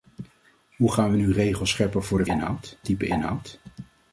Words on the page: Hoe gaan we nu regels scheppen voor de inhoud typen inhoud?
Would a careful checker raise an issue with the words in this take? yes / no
no